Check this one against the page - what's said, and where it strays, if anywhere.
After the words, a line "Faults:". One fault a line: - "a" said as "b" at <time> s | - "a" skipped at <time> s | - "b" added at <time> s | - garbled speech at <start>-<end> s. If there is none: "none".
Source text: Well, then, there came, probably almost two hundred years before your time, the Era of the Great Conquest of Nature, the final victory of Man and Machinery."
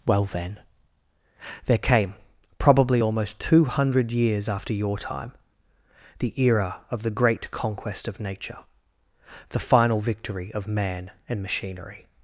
Well, then, there came, probably almost two hundred years after your time, the Era of the Great Conquest of Nature, the final victory of Man and Machinery."
Faults:
- "before" said as "after" at 4.5 s